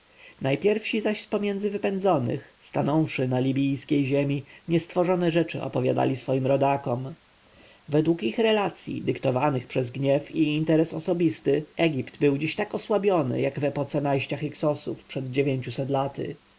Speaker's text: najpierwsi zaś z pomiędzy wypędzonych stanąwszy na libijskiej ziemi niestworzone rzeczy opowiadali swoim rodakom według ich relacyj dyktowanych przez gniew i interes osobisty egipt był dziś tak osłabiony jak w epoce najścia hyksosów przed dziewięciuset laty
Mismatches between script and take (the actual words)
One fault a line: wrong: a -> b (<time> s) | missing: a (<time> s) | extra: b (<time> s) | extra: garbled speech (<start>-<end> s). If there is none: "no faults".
no faults